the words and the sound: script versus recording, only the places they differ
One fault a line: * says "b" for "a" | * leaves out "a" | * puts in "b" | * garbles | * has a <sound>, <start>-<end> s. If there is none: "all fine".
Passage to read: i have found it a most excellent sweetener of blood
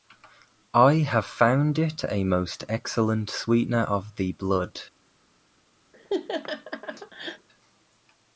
* puts in "the"
* has a laugh, 5.9-7.5 s